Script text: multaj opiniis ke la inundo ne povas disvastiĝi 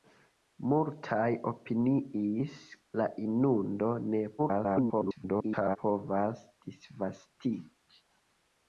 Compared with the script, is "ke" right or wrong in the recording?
wrong